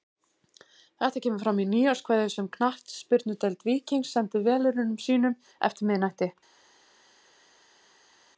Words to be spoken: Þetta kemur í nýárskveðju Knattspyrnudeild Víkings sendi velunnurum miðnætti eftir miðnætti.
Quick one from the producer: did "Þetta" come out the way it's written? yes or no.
yes